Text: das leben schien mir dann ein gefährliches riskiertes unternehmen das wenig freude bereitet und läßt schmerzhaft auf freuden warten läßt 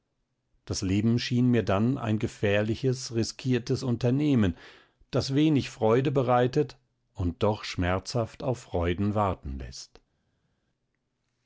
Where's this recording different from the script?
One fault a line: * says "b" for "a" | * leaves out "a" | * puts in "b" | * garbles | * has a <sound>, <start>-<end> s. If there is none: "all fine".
* says "doch" for "läßt"